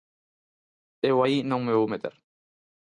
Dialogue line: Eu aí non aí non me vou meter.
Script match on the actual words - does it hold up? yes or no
no